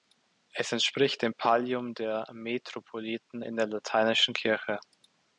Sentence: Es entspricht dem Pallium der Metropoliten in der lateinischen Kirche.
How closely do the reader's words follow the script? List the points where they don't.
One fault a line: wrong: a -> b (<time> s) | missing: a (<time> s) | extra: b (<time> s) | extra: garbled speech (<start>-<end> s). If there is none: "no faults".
no faults